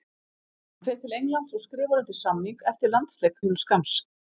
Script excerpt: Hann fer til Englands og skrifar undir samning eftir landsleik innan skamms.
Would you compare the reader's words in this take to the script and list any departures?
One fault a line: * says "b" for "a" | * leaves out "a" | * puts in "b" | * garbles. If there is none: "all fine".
all fine